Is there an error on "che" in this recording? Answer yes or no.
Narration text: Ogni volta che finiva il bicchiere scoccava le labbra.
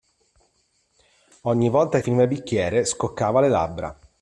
yes